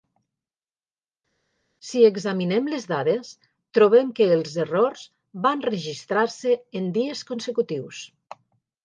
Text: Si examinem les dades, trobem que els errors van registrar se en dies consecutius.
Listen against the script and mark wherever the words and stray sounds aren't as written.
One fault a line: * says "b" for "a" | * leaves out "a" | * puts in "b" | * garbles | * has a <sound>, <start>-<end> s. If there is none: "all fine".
all fine